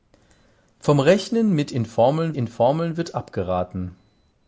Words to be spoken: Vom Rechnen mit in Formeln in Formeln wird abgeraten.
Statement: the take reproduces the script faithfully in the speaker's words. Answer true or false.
true